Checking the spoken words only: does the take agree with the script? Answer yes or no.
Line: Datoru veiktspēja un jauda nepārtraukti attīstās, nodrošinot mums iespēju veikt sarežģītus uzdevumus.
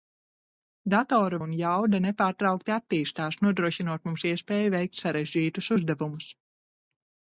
no